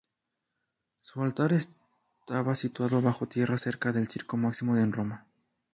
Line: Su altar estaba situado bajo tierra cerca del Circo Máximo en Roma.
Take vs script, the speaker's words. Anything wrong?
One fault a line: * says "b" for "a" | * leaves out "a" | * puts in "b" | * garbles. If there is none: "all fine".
all fine